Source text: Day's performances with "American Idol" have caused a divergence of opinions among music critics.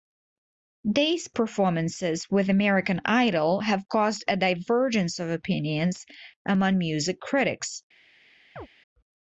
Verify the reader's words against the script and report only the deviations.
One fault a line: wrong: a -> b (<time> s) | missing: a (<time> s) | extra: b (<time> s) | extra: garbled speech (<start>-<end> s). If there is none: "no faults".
no faults